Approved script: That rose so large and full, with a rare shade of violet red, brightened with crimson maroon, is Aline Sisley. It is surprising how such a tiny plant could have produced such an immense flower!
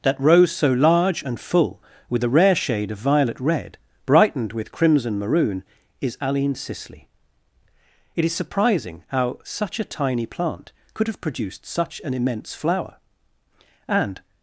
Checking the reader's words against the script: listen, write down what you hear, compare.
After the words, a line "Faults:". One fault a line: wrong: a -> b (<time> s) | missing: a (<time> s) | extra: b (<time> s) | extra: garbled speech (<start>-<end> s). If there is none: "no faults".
That rose so large and full, with a rare shade of violet red, brightened with crimson maroon, is Aline Sisley. It is surprising how such a tiny plant could have produced such an immense flower! And
Faults:
extra: And (13.9 s)